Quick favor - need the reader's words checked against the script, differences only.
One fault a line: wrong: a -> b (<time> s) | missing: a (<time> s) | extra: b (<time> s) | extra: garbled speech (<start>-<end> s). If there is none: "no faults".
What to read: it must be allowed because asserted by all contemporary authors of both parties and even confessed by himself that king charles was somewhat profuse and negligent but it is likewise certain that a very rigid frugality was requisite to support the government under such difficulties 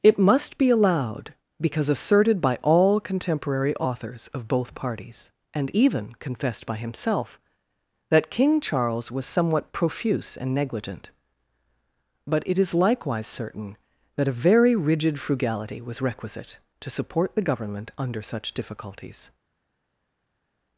no faults